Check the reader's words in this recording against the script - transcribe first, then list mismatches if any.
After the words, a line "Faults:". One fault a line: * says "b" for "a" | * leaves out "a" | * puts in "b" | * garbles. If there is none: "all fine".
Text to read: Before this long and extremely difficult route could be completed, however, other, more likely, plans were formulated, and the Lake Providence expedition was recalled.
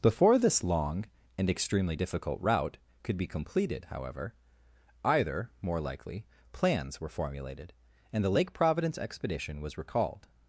Before this long and extremely difficult route could be completed, however, either, more likely, plans were formulated, and the Lake Providence expedition was recalled.
Faults:
* says "either" for "other"